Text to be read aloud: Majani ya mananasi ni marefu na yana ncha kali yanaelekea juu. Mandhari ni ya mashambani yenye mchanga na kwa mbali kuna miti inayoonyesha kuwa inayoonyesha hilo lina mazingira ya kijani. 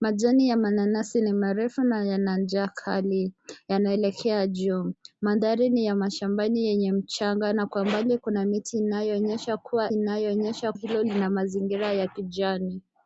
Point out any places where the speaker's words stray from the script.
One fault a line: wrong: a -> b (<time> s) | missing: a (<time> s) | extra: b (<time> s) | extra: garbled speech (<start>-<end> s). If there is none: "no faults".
no faults